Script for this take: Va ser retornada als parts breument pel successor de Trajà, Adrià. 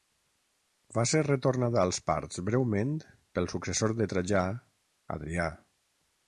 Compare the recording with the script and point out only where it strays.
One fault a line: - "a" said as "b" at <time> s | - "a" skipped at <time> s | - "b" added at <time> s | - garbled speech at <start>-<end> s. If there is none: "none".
none